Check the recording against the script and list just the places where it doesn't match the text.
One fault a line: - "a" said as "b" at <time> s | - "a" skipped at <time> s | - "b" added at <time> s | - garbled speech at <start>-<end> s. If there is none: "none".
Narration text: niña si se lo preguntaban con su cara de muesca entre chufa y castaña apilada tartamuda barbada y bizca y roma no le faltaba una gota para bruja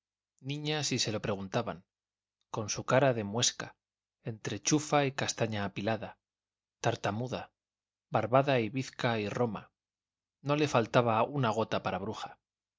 none